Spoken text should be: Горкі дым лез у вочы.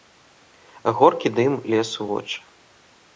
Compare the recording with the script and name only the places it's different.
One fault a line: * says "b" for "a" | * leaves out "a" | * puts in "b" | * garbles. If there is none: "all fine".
all fine